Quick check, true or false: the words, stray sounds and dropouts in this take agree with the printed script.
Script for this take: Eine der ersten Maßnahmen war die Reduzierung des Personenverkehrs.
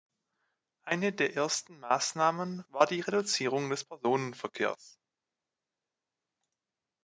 true